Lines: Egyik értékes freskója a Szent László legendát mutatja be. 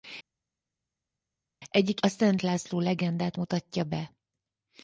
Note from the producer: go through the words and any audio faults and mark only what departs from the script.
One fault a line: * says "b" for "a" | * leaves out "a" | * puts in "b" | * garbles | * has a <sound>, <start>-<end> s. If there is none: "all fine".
* leaves out "értékes freskója"